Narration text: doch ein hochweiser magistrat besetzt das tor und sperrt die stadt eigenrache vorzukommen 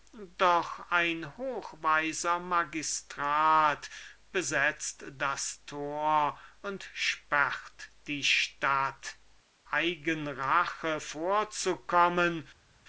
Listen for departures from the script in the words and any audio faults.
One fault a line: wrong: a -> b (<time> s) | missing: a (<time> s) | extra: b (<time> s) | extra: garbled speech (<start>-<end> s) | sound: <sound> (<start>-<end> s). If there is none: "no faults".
no faults